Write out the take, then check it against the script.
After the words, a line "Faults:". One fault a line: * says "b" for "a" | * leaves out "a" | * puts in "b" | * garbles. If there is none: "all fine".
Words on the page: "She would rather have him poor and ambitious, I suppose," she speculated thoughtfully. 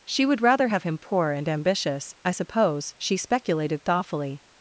"She would rather have him poor and ambitious, I suppose," she speculated thoughtfully.
Faults:
all fine